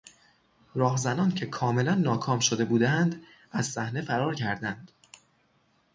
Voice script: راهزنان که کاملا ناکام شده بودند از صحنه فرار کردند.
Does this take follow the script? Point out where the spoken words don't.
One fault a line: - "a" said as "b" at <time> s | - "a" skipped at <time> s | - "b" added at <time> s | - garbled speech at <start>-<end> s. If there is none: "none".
none